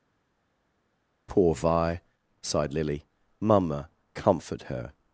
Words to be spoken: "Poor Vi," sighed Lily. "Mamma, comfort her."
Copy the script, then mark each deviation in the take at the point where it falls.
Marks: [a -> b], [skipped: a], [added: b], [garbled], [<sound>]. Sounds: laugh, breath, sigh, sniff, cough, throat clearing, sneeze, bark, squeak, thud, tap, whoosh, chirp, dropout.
"Poor Vi," sighed Lily. "Mamma, comfort her."